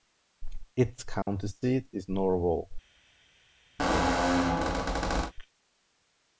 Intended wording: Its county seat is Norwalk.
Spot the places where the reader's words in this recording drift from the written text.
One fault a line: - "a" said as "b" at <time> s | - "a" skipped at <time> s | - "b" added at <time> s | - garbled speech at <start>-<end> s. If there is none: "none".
none